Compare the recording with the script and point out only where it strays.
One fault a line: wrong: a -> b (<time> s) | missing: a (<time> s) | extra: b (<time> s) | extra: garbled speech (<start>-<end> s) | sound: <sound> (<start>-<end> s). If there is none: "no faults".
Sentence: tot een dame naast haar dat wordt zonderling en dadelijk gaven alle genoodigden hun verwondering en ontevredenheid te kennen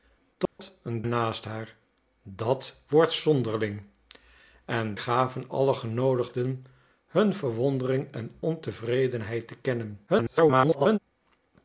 sound: dropout (0.5-0.6 s)
missing: dame (1.0 s)
missing: dadelijk (4.9 s)
extra: garbled speech (10.1-11.0 s)